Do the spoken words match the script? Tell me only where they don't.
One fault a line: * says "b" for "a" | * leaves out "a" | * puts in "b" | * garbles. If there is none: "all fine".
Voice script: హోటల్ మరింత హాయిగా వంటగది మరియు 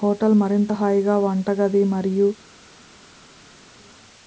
all fine